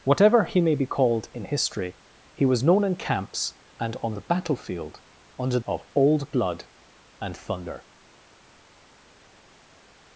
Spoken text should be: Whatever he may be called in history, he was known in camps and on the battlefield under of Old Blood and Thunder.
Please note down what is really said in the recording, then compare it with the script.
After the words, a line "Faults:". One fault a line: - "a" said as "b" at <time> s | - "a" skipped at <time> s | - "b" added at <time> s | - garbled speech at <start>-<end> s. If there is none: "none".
Whatever he may be called in history, he was known in camps and on the battlefield under of Old Blood and Thunder.
Faults:
none